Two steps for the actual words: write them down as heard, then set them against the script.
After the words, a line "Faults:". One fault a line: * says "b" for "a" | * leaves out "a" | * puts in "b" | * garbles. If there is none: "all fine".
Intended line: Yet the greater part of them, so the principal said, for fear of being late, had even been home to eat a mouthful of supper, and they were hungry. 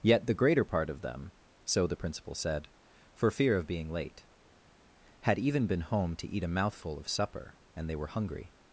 Yet the greater part of them, so the principal said, for fear of being late, had even been home to eat a mouthful of supper, and they were hungry.
Faults:
all fine